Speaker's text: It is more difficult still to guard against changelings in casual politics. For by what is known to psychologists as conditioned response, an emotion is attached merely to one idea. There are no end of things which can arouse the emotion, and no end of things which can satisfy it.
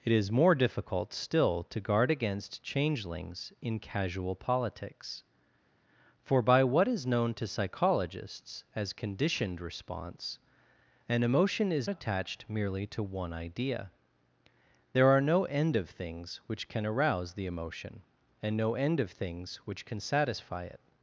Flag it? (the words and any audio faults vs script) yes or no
no